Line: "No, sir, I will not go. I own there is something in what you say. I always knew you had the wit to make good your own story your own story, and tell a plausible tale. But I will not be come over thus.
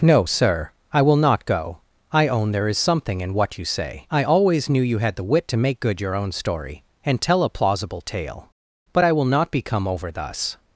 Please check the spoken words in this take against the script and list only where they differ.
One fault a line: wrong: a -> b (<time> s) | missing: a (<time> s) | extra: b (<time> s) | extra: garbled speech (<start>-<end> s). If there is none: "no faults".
missing: your own story (6.8 s)